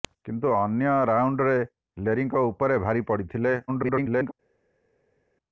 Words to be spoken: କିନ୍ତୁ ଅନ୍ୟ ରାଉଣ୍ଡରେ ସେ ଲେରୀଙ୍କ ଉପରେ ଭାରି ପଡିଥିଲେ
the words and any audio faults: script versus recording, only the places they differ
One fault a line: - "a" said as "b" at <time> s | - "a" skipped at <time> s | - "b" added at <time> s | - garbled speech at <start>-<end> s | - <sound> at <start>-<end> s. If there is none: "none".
- "ସେ" skipped at 1.5 s
- garbled speech at 3.7-4.3 s